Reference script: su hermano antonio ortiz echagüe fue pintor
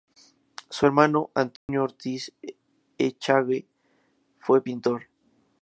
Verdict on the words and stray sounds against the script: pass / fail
fail